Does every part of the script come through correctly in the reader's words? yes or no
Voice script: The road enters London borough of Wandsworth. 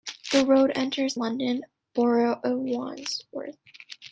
yes